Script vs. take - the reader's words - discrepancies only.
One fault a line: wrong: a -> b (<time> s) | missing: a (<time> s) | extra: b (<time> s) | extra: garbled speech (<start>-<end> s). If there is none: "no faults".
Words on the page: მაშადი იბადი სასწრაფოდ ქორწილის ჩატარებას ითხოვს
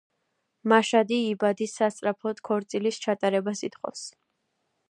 no faults